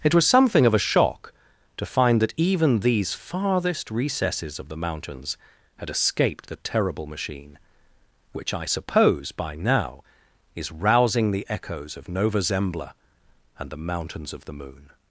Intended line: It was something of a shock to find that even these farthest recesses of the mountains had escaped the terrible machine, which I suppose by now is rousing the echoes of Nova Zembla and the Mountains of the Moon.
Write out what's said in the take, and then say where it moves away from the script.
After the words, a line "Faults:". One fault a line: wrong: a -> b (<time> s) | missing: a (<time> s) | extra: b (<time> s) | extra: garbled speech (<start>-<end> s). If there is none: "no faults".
It was something of a shock to find that even these farthest recesses of the mountains had escaped the terrible machine, which I suppose by now is rousing the echoes of Nova Zembla and the Mountains of the Moon.
Faults:
no faults